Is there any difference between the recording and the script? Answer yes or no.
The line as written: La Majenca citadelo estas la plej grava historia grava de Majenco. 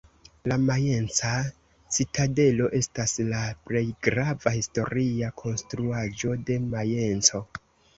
yes